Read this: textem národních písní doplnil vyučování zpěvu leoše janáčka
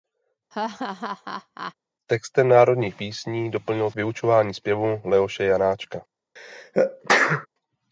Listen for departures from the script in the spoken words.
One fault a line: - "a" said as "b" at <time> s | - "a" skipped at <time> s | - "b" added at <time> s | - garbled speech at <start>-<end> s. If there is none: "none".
none